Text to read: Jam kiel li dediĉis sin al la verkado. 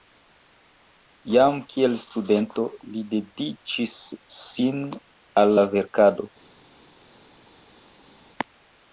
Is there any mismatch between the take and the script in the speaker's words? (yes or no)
yes